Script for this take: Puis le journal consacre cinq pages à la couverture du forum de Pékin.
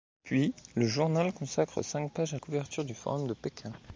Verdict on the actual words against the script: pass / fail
fail